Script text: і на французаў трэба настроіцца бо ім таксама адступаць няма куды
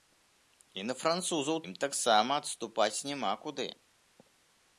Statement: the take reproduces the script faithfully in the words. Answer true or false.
false